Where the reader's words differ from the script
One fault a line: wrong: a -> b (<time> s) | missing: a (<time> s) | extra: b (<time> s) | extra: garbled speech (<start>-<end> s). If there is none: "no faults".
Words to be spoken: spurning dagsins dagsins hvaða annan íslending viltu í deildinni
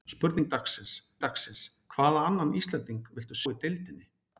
no faults